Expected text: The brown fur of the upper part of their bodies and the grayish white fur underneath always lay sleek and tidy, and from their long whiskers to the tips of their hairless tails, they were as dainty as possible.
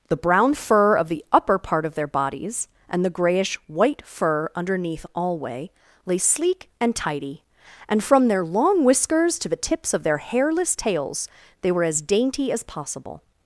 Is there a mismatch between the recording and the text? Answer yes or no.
yes